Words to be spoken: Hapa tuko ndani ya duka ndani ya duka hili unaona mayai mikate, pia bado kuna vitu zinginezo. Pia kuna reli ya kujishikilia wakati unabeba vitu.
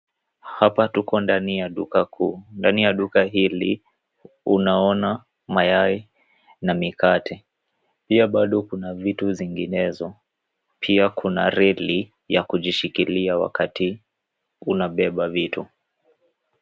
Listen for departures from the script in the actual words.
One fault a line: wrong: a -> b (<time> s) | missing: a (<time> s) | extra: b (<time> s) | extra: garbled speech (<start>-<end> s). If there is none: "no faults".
extra: kuu (2.0 s)
extra: na (6.6 s)